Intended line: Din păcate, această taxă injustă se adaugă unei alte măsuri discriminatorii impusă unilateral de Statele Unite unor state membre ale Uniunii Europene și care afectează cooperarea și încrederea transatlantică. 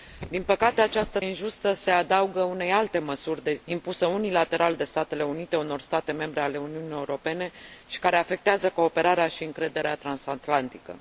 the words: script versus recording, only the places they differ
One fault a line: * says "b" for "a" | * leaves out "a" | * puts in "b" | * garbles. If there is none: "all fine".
* leaves out "taxă"
* leaves out "discriminatorii"